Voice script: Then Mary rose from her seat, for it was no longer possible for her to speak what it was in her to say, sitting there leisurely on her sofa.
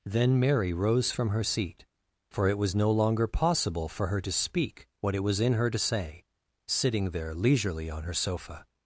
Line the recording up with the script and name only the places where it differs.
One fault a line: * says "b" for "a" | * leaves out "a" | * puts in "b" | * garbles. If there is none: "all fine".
all fine